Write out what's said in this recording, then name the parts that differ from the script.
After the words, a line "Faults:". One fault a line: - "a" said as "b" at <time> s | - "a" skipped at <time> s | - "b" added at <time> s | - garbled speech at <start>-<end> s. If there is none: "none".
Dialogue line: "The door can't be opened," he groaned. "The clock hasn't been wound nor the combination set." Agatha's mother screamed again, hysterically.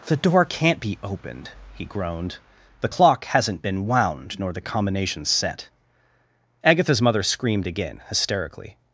"The door can't be opened," he groaned. "The clock hasn't been wound nor the combination set." Agatha's mother screamed again, hysterically.
Faults:
none